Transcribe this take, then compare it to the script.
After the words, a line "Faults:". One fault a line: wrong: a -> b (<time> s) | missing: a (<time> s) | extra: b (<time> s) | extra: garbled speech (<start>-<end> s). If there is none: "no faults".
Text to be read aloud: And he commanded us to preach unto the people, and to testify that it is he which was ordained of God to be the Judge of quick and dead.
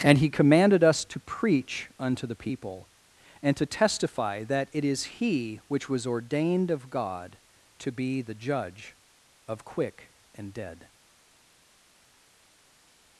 And he commanded us to preach unto the people, and to testify that it is he which was ordained of God to be the Judge of quick and dead.
Faults:
no faults